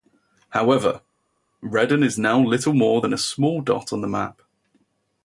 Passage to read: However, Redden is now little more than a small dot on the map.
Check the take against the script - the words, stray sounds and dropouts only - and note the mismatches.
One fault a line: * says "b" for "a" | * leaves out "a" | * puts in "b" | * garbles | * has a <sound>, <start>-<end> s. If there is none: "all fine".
all fine